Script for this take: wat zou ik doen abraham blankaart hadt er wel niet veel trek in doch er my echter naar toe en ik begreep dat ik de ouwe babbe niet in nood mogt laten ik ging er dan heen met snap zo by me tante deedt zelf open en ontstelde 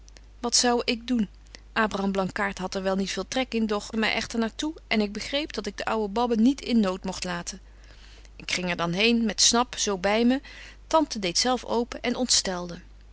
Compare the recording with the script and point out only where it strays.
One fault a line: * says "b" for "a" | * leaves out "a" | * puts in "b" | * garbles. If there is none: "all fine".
all fine